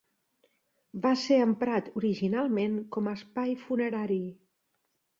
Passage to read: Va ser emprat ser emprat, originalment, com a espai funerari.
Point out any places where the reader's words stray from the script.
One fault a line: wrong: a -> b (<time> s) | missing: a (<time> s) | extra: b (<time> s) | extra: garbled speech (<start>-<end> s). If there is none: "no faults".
missing: ser emprat (1.9 s)